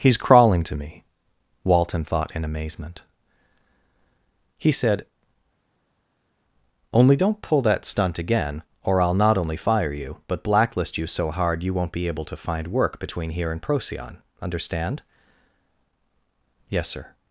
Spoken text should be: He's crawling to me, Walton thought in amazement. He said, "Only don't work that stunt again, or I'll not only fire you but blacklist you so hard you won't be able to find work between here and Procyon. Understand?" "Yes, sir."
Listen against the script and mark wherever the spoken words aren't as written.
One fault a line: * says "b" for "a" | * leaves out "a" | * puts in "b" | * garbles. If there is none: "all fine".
* says "pull" for "work"